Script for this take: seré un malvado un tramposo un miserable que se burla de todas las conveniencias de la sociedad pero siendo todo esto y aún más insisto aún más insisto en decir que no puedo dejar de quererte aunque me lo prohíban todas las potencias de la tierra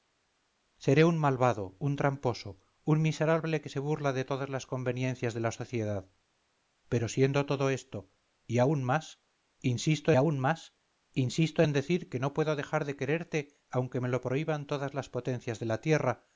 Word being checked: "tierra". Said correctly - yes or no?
yes